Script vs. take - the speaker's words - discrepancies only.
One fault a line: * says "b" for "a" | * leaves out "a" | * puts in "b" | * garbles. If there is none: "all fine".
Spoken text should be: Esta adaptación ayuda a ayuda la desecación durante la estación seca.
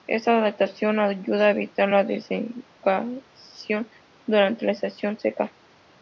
* says "evitar" for "ayuda"